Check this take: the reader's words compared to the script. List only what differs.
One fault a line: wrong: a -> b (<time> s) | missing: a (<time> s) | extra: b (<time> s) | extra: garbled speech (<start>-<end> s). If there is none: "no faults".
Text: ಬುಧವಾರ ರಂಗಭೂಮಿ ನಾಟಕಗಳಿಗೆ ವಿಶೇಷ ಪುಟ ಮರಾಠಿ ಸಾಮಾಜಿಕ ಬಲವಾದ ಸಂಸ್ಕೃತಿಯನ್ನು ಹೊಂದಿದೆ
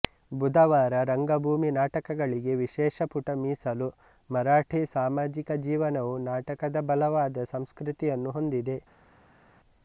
extra: ಮೀಸಲು (3.4 s)
extra: ಜೀವನವು ನಾಟಕದ (5.7 s)